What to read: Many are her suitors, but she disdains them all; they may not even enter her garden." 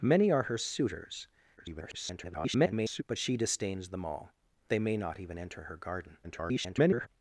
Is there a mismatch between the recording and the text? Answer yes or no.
yes